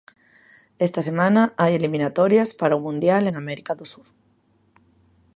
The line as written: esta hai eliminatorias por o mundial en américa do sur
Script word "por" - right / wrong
wrong